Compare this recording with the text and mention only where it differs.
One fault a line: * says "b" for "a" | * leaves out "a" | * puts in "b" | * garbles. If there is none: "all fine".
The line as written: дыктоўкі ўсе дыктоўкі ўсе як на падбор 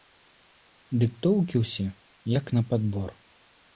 * leaves out "дыктоўкі ўсе"